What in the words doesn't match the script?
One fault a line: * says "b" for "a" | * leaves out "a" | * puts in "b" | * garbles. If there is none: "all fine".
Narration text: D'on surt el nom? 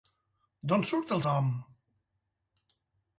all fine